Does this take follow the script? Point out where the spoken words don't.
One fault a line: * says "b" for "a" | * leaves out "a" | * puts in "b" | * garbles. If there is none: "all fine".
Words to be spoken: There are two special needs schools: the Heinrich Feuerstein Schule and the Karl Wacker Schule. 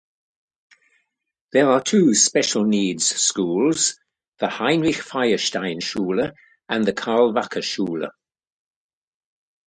all fine